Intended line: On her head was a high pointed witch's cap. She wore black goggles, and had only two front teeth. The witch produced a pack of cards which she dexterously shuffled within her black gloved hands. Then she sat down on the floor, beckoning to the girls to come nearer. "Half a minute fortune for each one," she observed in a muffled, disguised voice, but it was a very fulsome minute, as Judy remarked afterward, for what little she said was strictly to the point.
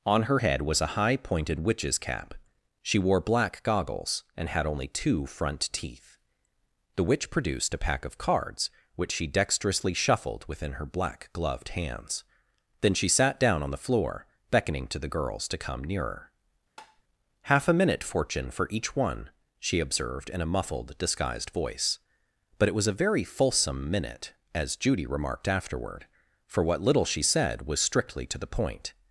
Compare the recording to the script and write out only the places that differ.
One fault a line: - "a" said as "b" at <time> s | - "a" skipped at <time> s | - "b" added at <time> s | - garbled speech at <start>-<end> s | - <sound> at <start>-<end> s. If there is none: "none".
- tap at 16.8-17.0 s